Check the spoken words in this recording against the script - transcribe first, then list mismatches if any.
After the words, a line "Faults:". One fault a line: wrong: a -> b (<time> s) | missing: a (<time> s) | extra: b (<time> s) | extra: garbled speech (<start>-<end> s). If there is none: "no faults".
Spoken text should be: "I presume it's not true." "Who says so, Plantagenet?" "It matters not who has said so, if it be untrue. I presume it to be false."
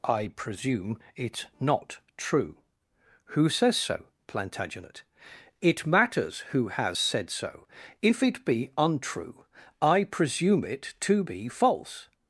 "I presume it's not true." "Who says so, Plantagenet?" "It matters who has said so, if it be untrue. I presume it to be false."
Faults:
missing: not (6.4 s)